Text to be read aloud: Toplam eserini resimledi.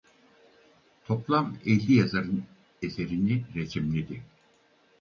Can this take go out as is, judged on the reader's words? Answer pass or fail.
fail